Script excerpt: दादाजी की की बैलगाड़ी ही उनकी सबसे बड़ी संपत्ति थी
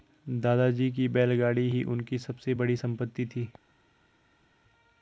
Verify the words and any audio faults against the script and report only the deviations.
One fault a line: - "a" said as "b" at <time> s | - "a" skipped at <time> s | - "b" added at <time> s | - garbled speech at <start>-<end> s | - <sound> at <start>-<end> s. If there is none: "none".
- "की" skipped at 1.1 s